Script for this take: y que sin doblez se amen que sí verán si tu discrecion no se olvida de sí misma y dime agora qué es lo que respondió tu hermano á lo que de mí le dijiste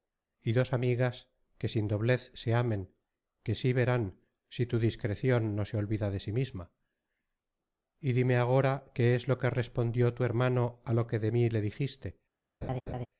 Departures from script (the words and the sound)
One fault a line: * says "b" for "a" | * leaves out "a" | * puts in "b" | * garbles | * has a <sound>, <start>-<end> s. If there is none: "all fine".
* puts in "dos amigas"
* has a laugh, 12.6-13.1 s